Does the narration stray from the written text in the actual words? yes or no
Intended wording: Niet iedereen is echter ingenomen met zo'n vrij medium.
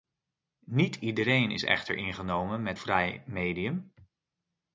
yes